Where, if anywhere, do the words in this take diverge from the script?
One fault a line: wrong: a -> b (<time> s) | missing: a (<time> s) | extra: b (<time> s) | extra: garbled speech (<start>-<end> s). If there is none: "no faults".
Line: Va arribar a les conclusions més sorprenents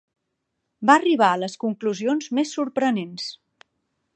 no faults